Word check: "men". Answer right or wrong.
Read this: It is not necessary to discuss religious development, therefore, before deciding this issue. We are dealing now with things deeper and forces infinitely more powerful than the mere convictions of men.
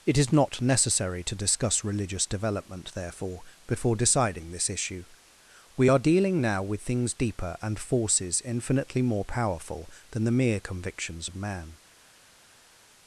wrong